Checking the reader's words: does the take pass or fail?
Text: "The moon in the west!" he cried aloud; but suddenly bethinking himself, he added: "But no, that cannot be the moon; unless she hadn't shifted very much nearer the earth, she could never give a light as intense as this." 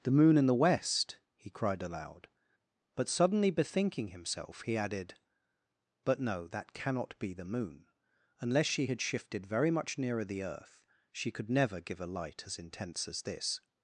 fail